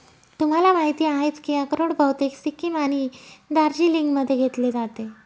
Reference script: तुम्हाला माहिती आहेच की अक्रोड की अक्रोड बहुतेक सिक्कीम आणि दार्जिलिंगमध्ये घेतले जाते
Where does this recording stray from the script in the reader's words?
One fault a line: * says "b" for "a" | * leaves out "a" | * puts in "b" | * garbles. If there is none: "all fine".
* leaves out "की अक्रोड"